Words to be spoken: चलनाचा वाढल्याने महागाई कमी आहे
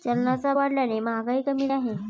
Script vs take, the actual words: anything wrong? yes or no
no